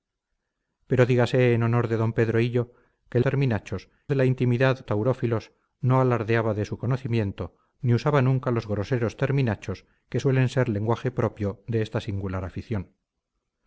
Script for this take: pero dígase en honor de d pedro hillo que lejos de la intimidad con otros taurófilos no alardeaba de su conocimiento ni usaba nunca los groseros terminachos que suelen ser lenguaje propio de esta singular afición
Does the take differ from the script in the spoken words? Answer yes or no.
yes